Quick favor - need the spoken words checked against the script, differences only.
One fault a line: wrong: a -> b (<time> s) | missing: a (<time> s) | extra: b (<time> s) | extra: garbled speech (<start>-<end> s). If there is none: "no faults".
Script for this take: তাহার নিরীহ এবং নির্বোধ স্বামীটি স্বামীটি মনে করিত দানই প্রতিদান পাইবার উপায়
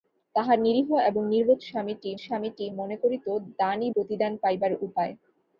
no faults